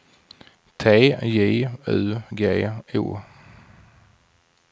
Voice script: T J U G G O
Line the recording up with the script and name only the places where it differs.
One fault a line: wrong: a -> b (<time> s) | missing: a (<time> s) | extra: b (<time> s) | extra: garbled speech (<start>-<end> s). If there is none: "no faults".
missing: G (2.7 s)